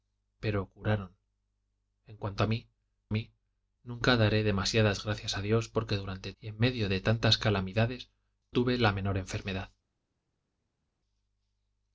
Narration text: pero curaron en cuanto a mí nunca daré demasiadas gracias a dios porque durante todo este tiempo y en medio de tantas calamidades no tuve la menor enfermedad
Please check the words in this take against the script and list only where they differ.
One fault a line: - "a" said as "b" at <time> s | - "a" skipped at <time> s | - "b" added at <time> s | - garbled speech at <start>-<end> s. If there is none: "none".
- "mí" added at 3.1 s
- "todo este tiempo" skipped at 6.3 s
- "no" skipped at 8.1 s